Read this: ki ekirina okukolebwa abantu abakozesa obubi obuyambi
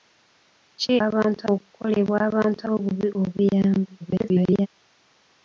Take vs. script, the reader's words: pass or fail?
fail